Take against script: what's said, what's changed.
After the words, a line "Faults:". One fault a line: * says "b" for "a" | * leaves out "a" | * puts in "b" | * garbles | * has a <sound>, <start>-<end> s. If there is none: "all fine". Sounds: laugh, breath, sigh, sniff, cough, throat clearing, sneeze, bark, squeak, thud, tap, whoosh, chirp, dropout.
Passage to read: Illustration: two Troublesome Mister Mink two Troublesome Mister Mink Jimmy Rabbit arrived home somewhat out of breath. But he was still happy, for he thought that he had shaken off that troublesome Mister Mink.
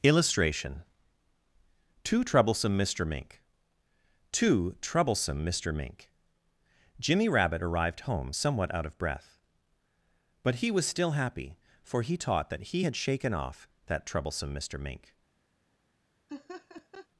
Illustration: two Troublesome Mister Mink two Troublesome Mister Mink Jimmy Rabbit arrived home somewhat out of breath. But he was still happy, for he taught that he had shaken off that troublesome Mister Mink.
Faults:
* says "taught" for "thought"
* has a laugh, 16.3-17.1 s